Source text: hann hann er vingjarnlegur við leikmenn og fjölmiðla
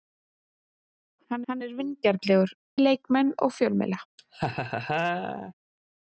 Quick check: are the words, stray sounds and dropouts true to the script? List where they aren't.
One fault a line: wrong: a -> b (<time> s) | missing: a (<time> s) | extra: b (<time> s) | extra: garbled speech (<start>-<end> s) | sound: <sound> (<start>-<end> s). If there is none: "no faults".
sound: laugh (4.2-5.5 s)